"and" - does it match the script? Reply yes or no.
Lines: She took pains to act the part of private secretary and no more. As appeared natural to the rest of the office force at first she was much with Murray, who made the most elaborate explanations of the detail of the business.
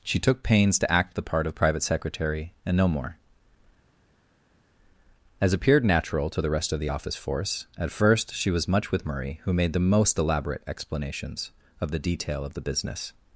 yes